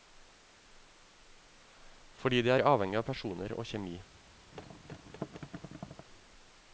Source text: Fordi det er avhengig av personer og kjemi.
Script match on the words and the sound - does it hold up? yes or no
no